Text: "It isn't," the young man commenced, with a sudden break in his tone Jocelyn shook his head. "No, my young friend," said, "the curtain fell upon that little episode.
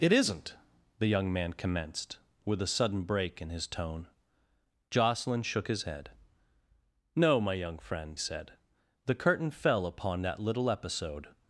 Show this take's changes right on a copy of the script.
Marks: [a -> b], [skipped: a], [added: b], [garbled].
"It isn't," the young man commenced, with a sudden break in his tone Jocelyn shook his head. "No, my young friend," said, "the curtain fell upon that little episode.